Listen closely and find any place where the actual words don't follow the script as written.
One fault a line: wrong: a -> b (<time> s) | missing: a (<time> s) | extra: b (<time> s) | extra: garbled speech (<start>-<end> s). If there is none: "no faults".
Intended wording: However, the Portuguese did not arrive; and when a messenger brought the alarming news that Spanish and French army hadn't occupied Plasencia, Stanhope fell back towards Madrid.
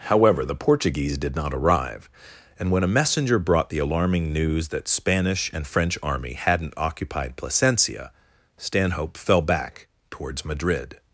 no faults